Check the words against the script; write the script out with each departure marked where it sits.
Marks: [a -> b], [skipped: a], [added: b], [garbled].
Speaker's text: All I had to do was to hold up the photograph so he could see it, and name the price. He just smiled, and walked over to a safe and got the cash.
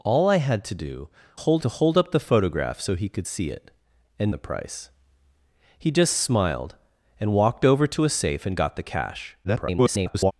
All I had to do [was -> hold] to hold up the photograph so he could see it, and [skipped: name] the price. He just smiled, and walked over to a safe and got the cash. [garbled]